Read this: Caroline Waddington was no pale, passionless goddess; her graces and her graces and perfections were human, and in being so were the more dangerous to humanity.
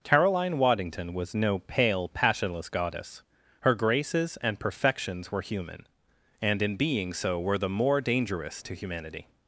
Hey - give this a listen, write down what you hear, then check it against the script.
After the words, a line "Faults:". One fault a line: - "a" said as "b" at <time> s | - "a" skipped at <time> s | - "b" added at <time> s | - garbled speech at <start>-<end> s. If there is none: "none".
Caroline Waddington was no pale, passionless goddess; her graces and perfections were human, and in being so were the more dangerous to humanity.
Faults:
- "her graces and" skipped at 4.6 s